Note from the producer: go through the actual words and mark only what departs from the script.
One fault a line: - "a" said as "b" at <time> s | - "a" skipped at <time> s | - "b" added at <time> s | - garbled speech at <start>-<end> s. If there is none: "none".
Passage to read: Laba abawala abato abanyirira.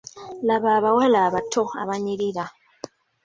none